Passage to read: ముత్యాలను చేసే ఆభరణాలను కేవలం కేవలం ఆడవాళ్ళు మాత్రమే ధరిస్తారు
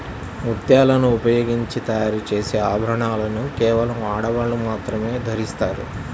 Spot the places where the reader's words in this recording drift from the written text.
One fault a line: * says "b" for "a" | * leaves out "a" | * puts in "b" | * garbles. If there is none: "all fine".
* puts in "ఉపయోగించి తయారు"
* leaves out "కేవలం"